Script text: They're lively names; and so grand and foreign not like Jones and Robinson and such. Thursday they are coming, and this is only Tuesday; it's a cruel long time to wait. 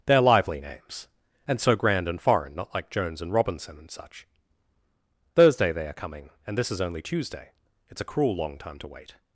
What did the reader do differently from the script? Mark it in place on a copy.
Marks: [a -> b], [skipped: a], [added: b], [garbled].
They're lively names; and so grand and foreign not like Jones and Robinson and such. Thursday they are coming, and this is only Tuesday; it's a cruel long time to wait.